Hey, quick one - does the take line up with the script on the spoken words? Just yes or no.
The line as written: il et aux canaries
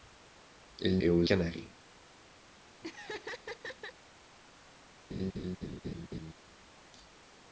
yes